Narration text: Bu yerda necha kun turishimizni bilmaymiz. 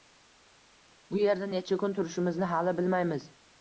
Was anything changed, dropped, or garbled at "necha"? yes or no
no